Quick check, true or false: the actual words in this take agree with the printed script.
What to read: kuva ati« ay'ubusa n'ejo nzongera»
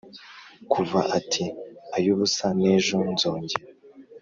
true